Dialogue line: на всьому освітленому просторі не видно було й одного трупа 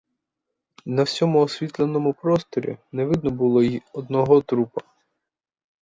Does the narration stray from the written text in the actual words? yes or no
no